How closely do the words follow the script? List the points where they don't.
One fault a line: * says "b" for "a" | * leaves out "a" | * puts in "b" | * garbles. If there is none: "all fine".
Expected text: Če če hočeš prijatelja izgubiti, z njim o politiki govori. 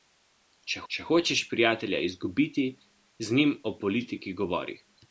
all fine